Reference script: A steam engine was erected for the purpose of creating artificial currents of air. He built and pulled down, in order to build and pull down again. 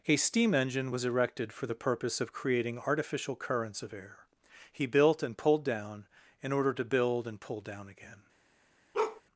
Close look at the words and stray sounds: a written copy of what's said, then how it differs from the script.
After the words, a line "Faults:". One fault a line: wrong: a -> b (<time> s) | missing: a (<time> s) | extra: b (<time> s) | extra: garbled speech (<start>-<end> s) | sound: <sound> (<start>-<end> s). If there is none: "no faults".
A steam engine was erected for the purpose of creating artificial currents of air. He built and pulled down, in order to build and pull down again.
Faults:
sound: bark (8.9-9.2 s)